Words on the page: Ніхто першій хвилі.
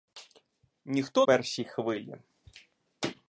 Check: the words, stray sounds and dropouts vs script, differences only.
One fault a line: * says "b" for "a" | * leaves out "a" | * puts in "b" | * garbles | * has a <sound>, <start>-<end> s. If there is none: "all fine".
all fine